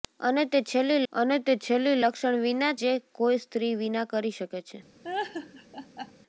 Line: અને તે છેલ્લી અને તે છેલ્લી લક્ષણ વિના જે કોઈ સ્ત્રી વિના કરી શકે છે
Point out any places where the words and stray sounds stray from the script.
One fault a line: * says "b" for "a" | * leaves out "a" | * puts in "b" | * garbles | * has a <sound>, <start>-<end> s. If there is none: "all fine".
* has a laugh, 5.0-6.1 s